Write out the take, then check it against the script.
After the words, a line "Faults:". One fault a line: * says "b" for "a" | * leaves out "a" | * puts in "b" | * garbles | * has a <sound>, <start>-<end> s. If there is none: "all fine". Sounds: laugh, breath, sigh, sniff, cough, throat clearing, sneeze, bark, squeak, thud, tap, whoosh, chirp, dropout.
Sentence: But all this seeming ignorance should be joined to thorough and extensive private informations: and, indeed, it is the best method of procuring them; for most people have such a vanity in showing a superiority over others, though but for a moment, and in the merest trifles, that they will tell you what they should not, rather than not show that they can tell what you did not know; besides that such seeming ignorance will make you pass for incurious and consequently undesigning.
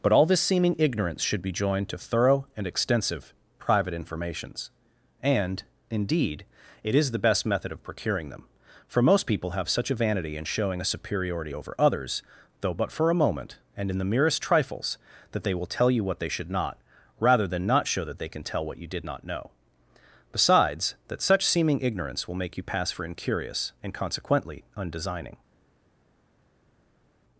But all this seeming ignorance should be joined to thorough and extensive private informations: and, indeed, it is the best method of procuring them; for most people have such a vanity in showing a superiority over others, though but for a moment, and in the merest trifles, that they will tell you what they should not, rather than not show that they can tell what you did not know; besides that such seeming ignorance will make you pass for incurious and consequently undesigning.
Faults:
all fine